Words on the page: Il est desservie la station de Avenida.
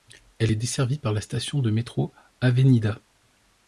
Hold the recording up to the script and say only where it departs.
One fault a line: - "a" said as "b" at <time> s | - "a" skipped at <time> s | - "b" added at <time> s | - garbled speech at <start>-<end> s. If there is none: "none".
- "Il" said as "Elle" at 0.4 s
- "par" added at 1.0 s
- "métro" added at 1.7 s